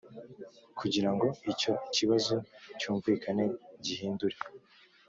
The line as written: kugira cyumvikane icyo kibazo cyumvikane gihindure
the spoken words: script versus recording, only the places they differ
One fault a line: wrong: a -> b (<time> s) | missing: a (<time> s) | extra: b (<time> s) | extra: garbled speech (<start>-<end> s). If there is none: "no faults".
wrong: cyumvikane -> ngo (1.1 s)